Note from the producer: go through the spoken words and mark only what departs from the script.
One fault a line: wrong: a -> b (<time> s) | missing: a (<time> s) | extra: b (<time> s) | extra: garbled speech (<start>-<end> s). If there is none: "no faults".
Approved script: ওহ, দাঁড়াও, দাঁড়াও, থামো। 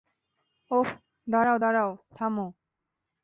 no faults